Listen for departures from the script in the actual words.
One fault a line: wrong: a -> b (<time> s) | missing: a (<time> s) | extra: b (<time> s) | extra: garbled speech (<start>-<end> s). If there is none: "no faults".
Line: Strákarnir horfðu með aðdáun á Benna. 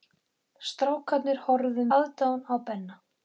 missing: með (1.9 s)